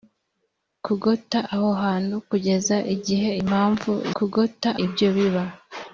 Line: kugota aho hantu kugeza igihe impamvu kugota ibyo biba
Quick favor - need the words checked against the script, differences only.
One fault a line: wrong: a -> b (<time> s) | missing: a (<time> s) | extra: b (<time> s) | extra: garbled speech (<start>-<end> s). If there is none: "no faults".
no faults